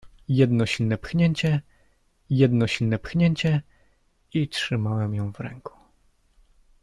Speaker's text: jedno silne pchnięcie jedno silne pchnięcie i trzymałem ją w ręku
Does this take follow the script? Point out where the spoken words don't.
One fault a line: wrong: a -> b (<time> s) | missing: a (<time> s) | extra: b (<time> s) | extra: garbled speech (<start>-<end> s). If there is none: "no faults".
no faults